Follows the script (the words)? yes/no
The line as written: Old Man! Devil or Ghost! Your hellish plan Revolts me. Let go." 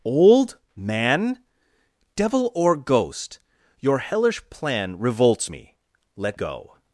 yes